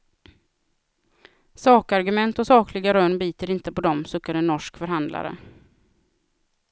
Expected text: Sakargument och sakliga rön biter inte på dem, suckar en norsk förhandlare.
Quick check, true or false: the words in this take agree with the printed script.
true